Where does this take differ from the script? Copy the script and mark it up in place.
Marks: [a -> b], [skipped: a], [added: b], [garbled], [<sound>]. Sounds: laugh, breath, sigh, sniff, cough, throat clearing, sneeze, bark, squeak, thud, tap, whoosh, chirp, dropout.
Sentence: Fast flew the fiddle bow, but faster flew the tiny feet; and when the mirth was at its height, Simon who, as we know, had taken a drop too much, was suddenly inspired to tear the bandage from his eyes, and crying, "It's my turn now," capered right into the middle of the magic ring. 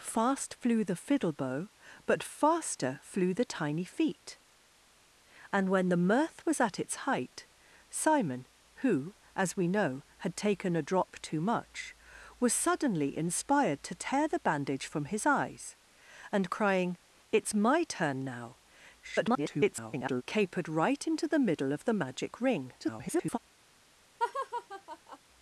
Fast flew the fiddle bow, but faster flew the tiny feet; and when the mirth was at its height, Simon who, as we know, had taken a drop too much, was suddenly inspired to tear the bandage from his eyes, and crying, "It's my turn now," [garbled] capered right into the middle of the magic ring. [garbled] [laugh]